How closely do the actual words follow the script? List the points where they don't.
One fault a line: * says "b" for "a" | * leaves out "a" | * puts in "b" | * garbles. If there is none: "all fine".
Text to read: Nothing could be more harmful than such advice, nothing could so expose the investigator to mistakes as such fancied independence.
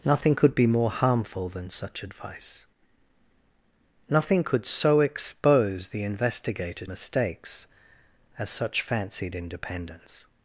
* leaves out "to"